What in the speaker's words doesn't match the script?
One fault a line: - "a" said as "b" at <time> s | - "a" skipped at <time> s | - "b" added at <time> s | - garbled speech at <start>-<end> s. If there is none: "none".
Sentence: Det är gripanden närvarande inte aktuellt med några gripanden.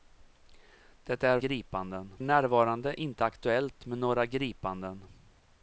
none